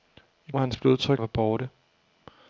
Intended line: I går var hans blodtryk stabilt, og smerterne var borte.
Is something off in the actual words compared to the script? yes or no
yes